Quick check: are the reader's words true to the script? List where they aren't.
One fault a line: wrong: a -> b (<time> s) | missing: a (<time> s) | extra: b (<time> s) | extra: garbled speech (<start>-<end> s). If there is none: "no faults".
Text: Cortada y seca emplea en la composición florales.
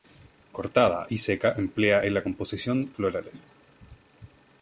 no faults